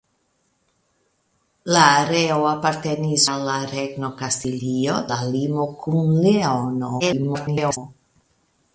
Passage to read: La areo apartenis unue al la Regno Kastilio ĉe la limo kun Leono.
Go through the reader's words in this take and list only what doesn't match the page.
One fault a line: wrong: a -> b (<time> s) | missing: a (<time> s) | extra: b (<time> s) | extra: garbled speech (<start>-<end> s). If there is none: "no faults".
missing: unue (3.2 s)
missing: ĉe (5.0 s)
extra: garbled speech (7.0-7.8 s)